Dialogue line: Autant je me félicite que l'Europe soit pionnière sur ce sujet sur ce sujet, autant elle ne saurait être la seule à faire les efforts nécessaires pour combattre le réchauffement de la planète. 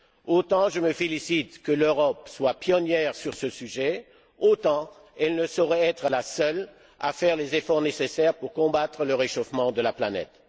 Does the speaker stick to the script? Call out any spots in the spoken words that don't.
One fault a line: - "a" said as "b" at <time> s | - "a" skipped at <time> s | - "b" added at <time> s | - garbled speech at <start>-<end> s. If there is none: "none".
- "sur ce sujet" skipped at 4.1 s